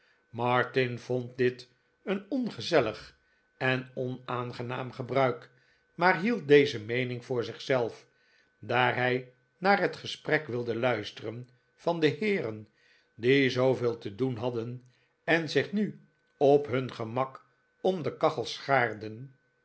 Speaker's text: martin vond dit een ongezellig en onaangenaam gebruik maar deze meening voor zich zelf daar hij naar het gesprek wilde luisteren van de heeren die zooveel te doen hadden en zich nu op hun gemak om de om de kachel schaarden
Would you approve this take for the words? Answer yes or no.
no